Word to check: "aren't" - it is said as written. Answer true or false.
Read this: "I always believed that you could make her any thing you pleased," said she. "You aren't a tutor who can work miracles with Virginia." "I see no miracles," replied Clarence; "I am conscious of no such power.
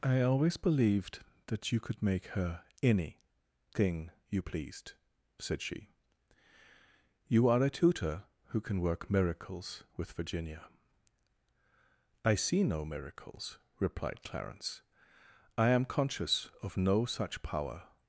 false